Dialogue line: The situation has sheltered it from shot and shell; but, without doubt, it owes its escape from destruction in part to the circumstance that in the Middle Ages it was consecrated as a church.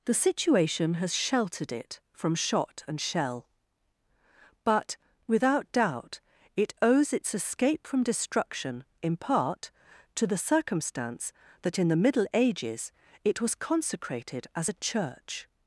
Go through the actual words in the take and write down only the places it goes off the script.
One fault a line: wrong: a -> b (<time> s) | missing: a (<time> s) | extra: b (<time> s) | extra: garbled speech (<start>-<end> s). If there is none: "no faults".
no faults